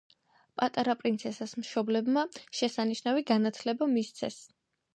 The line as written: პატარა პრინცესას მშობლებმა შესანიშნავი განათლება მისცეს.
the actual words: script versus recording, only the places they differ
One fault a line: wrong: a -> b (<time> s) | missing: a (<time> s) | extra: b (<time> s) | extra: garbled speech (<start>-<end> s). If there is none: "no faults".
no faults